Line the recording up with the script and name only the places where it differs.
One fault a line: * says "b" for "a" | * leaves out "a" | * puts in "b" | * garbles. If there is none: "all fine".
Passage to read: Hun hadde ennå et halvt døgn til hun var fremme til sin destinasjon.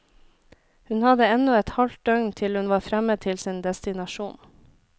all fine